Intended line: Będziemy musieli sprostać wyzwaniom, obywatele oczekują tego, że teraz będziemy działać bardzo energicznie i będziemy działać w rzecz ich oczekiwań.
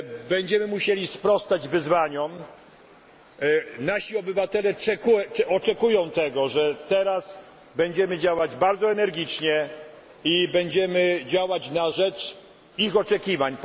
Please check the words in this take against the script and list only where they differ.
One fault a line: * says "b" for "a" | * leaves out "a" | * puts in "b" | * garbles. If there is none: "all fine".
* puts in "nasi"
* says "na" for "w"